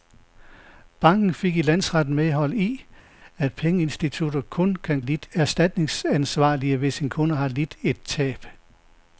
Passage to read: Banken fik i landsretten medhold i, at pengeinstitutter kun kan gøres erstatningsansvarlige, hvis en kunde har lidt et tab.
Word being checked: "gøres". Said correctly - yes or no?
no